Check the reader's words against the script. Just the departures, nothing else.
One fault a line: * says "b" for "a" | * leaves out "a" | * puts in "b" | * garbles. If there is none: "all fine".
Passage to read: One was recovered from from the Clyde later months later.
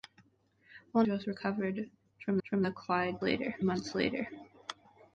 all fine